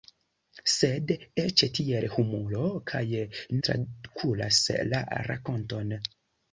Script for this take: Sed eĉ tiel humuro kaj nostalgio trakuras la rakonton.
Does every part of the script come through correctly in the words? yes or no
no